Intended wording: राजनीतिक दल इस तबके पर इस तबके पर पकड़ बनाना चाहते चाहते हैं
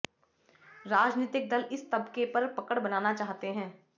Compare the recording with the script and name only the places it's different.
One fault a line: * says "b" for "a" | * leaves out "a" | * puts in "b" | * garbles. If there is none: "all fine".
* leaves out "इस तबके पर"
* leaves out "चाहते"